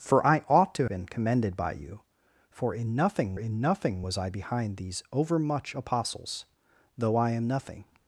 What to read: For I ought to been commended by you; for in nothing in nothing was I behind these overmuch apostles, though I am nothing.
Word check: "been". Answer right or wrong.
right